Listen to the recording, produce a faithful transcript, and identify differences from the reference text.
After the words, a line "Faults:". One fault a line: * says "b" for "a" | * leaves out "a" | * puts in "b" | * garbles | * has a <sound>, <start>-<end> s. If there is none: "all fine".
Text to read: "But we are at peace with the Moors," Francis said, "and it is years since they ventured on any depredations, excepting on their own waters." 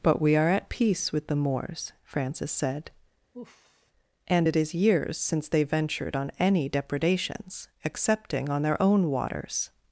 "But we are at peace with the Moors," Francis said, "and it is years since they ventured on any depredations, excepting on their own waters."
Faults:
* has a sigh, 3.3-3.9 s